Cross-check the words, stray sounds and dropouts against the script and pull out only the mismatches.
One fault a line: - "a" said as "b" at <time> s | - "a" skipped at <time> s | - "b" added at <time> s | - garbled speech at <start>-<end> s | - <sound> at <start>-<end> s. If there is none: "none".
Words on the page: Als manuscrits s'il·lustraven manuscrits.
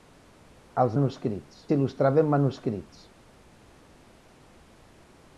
none